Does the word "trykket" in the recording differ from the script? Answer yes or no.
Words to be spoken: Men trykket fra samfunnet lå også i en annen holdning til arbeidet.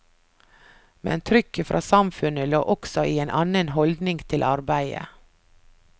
no